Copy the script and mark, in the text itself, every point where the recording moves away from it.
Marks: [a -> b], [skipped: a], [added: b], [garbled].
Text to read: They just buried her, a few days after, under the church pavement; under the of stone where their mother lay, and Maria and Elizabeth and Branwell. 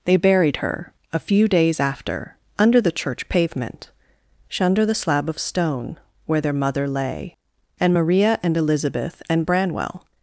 They [skipped: just] buried her, a few days after, under the church pavement; under the [added: slab] of stone where their mother lay, and Maria and Elizabeth and Branwell.